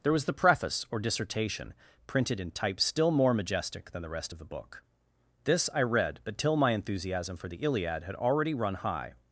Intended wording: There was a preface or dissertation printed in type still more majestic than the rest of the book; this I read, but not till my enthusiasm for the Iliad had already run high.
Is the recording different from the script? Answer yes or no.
yes